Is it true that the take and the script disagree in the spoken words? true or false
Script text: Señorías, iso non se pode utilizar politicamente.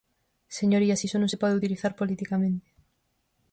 false